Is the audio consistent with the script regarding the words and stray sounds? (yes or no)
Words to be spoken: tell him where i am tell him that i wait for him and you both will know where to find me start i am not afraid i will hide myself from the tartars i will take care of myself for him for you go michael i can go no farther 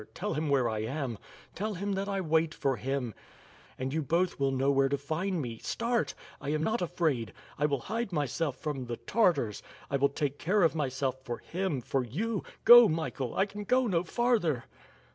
yes